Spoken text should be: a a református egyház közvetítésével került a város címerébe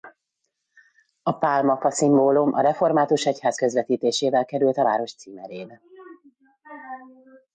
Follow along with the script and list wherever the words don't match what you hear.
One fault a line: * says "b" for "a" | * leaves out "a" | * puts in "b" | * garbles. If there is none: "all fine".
* puts in "pálmafa szimbólum"